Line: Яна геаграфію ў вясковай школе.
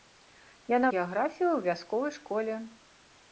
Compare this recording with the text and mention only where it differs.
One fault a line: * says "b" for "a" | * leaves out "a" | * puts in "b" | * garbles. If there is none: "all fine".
all fine